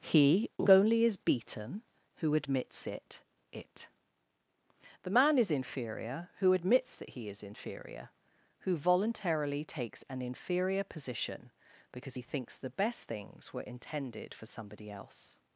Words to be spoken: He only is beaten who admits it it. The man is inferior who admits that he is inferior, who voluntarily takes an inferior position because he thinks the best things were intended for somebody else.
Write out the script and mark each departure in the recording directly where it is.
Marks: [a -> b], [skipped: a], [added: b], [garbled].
He only is beaten who admits it it. The man is inferior who admits that he is inferior, who voluntarily takes an inferior position because he thinks the best things were intended for somebody else.